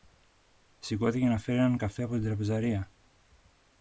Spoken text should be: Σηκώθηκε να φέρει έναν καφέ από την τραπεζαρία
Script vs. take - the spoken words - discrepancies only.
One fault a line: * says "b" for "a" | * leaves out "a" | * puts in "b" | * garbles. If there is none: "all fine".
all fine